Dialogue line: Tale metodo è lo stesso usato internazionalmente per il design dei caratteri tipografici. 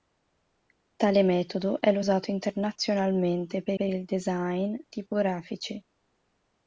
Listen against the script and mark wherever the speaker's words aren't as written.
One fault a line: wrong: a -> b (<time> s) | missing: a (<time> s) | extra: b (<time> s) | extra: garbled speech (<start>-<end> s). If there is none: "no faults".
missing: stesso (2.0 s)
extra: per (3.7 s)
missing: dei caratteri (4.8 s)